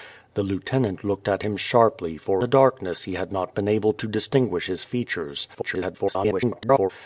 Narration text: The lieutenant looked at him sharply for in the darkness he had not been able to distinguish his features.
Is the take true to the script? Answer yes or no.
no